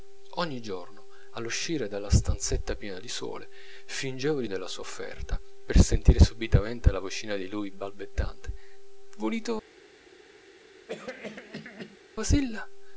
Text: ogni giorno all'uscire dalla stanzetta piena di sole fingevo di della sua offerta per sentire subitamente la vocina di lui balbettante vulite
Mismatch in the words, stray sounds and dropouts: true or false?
true